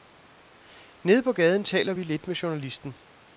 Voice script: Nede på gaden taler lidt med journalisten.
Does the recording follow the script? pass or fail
fail